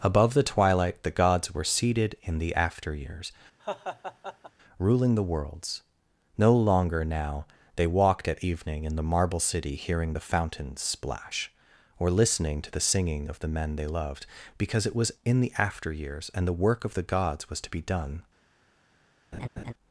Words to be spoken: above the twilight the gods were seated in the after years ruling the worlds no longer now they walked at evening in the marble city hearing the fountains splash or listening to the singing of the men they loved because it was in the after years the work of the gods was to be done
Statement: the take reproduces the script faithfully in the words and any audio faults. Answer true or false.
false